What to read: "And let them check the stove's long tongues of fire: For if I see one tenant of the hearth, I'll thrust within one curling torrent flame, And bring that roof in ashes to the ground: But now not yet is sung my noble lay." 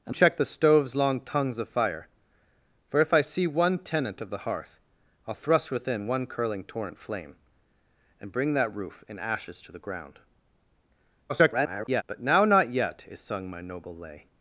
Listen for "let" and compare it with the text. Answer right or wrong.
wrong